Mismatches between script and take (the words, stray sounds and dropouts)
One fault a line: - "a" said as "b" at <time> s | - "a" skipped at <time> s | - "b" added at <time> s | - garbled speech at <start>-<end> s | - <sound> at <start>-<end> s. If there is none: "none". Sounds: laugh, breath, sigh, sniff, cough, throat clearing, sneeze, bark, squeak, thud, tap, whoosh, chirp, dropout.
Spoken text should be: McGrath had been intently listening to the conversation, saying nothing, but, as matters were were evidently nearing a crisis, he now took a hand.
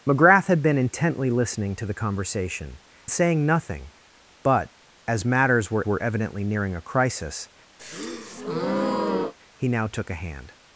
- breath at 7.8-9.3 s